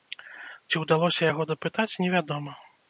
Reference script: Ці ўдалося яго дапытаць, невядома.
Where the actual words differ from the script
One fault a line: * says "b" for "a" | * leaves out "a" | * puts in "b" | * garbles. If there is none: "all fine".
all fine